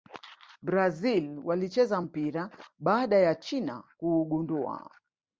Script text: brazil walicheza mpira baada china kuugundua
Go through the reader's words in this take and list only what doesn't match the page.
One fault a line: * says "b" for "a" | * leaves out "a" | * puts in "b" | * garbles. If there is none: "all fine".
* puts in "ya"